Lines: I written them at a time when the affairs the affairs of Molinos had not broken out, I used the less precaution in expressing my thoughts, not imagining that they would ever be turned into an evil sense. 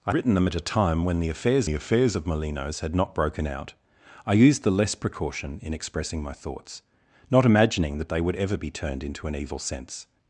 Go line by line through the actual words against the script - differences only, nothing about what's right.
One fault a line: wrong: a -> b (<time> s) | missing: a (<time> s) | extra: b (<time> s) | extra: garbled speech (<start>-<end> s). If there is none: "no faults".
no faults